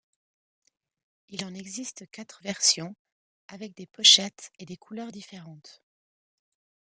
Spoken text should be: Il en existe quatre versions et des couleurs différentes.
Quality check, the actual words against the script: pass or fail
fail